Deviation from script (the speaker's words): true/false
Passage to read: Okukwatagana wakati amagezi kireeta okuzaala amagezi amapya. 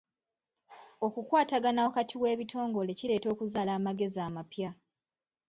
true